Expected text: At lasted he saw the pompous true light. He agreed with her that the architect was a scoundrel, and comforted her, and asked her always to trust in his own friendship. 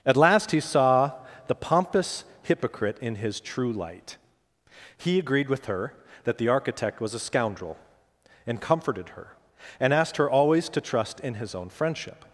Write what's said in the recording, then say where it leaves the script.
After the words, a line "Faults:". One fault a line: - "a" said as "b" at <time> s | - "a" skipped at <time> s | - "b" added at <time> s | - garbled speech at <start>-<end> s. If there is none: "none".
At last he saw the pompous hypocrite in his true light. He agreed with her that the architect was a scoundrel, and comforted her, and asked her always to trust in his own friendship.
Faults:
- "lasted" said as "last" at 0.2 s
- "hypocrite in his" added at 2.4 s